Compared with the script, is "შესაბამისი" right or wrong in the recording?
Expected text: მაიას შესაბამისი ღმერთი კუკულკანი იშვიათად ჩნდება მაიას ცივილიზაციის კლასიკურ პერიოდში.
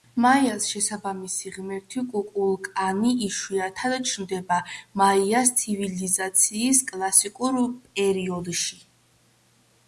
right